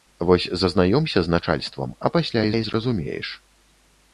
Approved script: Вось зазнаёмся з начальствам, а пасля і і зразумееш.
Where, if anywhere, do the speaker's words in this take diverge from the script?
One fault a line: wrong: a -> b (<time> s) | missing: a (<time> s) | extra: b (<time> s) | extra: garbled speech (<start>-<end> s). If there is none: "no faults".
no faults